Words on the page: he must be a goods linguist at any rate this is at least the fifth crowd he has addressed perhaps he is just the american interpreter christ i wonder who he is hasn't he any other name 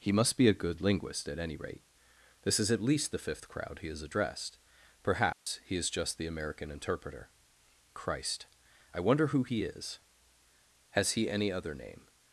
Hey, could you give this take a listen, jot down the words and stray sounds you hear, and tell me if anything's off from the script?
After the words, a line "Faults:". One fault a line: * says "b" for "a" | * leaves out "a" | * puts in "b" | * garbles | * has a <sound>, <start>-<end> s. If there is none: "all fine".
he must be a good linguist at any rate this is at least the fifth crowd he has addressed perhaps he is just the american interpreter christ i wonder who he is has he any other name
Faults:
* says "good" for "goods"
* has a dropout, 5.3-5.5 s
* says "has" for "hasn't"